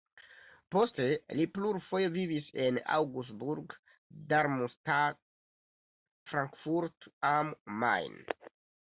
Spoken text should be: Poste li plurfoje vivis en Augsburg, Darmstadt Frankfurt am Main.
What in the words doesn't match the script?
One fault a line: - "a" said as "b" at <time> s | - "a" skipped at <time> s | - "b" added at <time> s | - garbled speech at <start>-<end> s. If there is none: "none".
none